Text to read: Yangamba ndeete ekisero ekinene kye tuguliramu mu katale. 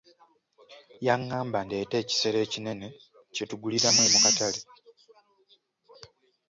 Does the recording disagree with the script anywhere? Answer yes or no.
no